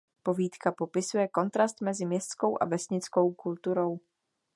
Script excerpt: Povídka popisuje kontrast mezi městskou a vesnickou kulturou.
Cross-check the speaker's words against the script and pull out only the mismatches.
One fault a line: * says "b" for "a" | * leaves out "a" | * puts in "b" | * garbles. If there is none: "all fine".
all fine